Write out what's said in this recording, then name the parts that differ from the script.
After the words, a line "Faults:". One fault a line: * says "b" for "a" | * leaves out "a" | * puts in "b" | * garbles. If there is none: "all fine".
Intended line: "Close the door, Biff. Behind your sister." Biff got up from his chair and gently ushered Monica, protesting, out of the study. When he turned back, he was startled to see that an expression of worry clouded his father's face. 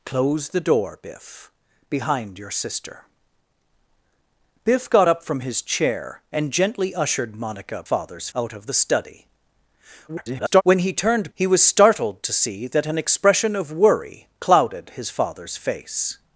"Close the door, Biff. Behind your sister." Biff got up from his chair and gently ushered Monica, father's, out of the study. [garbled] When he turned he was startled to see that an expression of worry clouded his father's face.
Faults:
* says "father's" for "protesting"
* garbles
* leaves out "back"